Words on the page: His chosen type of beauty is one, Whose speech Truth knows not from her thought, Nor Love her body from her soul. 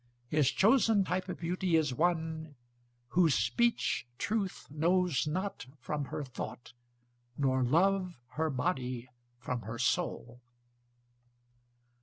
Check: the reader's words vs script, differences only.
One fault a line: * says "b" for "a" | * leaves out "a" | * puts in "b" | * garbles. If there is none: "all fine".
all fine